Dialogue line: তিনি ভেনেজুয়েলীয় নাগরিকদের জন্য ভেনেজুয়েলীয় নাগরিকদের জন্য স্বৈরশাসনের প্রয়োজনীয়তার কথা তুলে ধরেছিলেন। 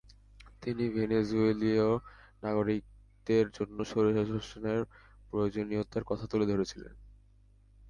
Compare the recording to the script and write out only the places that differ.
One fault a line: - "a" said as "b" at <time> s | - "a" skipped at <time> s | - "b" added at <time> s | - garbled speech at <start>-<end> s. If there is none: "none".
- "ভেনেজুয়েলীয় নাগরিকদের জন্য" skipped at 3.8 s